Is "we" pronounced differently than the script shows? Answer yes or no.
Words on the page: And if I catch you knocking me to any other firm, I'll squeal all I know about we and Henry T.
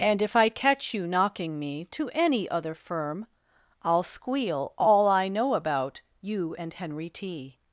yes